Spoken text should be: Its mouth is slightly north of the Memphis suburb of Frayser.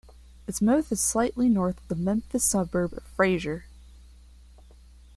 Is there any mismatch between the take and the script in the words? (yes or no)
no